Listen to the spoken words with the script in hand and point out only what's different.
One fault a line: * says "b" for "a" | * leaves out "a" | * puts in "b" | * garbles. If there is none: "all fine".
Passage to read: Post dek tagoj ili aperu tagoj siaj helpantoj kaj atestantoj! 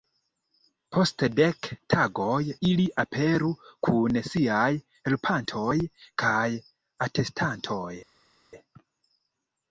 * says "kun" for "tagoj"